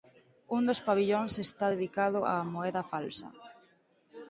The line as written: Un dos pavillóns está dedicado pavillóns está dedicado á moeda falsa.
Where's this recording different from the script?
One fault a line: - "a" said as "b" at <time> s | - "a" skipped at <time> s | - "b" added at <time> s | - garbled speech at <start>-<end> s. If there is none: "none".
- "pavillóns está dedicado" skipped at 2.2 s